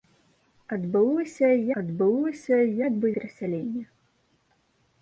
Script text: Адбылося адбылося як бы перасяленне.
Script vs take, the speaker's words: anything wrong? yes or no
no